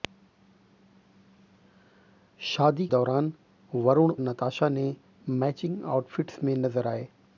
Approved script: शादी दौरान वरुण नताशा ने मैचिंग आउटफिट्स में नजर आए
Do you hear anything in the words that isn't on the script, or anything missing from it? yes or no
no